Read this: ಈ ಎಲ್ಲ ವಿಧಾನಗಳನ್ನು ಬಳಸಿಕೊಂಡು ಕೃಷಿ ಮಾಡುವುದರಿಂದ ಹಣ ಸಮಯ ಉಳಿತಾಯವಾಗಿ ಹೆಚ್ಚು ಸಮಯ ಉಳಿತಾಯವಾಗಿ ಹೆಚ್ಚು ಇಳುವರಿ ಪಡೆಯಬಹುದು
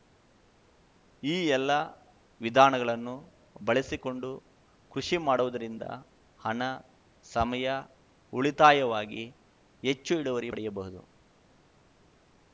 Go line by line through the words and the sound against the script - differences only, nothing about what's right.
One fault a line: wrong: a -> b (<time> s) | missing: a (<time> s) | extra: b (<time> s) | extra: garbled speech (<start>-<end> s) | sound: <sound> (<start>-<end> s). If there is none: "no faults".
missing: ಸಮಯ ಉಳಿತಾಯವಾಗಿ ಹೆಚ್ಚು (10.2 s)